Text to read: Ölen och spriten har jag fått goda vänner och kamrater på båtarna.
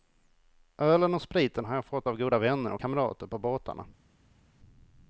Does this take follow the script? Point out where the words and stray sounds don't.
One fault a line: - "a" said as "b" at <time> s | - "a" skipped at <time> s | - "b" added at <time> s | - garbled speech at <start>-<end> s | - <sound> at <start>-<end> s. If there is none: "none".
- "av" added at 2.1 s